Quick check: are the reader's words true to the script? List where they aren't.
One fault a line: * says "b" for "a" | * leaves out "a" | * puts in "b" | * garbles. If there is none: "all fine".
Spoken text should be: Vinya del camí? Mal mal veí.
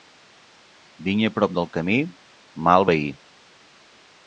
* puts in "prop"
* leaves out "mal"